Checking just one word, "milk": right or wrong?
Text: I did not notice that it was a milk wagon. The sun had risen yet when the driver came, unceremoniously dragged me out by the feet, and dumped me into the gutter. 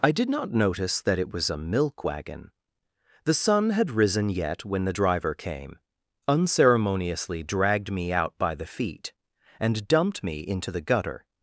right